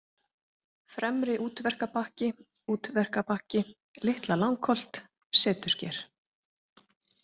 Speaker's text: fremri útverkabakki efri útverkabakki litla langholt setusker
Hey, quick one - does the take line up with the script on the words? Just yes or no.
no